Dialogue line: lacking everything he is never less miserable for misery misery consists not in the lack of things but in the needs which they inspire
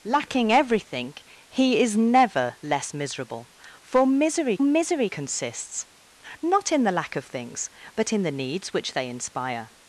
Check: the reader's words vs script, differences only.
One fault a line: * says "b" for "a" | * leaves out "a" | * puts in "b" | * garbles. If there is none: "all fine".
all fine